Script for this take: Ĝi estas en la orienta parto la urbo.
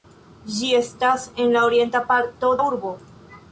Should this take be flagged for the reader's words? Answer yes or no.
no